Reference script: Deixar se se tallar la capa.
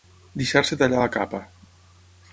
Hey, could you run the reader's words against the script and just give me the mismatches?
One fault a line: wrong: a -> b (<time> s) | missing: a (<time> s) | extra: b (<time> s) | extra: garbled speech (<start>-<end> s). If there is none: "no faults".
missing: se (0.8 s)